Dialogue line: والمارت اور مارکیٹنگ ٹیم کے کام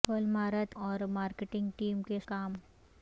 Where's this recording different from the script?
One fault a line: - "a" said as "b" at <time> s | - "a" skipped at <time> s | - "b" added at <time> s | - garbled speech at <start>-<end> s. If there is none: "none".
none